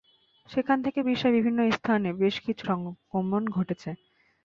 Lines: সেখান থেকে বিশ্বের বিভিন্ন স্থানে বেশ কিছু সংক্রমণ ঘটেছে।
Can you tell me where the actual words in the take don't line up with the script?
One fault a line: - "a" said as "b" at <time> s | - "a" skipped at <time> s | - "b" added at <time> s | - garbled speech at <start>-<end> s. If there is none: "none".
none